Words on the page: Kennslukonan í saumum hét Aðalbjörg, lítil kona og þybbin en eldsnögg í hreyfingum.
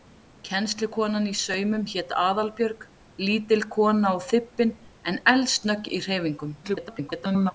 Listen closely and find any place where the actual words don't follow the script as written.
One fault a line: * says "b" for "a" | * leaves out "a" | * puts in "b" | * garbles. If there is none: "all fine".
* garbles